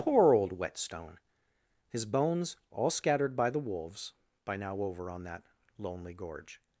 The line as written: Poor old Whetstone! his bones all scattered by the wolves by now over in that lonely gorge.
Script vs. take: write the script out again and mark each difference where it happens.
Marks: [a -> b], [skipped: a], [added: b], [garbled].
Poor old Whetstone! his bones all scattered by the wolves by now over [in -> on] that lonely gorge.